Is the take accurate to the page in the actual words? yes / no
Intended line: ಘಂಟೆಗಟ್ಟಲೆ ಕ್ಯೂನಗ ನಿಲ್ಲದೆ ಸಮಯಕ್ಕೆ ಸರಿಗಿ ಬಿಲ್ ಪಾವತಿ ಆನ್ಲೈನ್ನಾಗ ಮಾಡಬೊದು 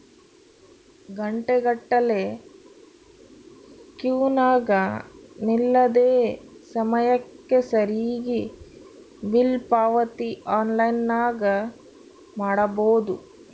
yes